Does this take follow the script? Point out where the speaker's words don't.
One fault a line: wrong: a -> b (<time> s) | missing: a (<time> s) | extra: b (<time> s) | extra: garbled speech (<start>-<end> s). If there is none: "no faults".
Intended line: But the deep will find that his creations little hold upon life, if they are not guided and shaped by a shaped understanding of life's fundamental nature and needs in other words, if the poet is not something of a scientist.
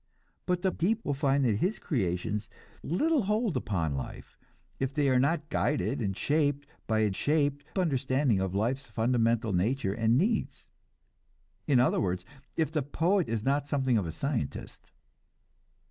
no faults